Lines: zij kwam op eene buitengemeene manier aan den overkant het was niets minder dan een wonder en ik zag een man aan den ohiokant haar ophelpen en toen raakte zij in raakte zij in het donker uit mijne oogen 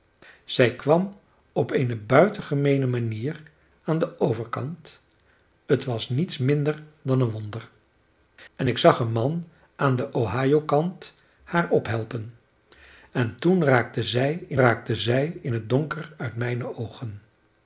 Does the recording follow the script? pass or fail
pass